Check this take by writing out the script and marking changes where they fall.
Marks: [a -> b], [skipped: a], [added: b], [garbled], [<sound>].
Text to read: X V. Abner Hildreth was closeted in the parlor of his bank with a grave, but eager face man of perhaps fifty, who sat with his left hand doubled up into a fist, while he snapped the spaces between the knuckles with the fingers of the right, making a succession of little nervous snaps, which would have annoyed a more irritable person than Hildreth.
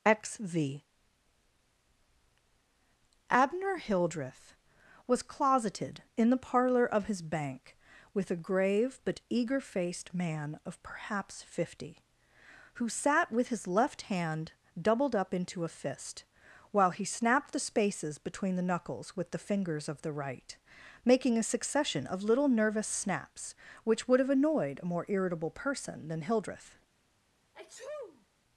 X V. Abner Hildreth was closeted in the parlor of his bank with a grave, but eager [face -> faced] man of perhaps fifty, who sat with his left hand doubled up into a fist, while he snapped the spaces between the knuckles with the fingers of the right, making a succession of little nervous snaps, which would have annoyed a more irritable person than Hildreth. [sneeze]